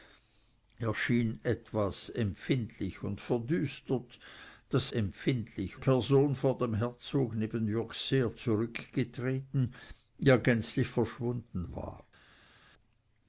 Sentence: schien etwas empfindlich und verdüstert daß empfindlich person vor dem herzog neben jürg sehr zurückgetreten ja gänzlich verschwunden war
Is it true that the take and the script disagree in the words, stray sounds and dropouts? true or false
false